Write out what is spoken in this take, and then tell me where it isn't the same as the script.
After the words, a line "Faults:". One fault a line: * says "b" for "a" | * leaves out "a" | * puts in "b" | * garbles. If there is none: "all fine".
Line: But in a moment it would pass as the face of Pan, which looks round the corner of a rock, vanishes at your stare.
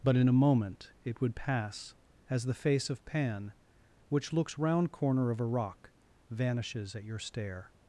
But in a moment it would pass as the face of Pan, which looks round corner of a rock, vanishes at your stare.
Faults:
* leaves out "the"